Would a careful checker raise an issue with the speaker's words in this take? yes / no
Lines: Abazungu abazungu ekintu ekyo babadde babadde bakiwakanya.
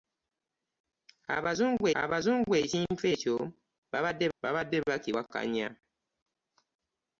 no